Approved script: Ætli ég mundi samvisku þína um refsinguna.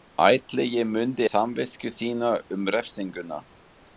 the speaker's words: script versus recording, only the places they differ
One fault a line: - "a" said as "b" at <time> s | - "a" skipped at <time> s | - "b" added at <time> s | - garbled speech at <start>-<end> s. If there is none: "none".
none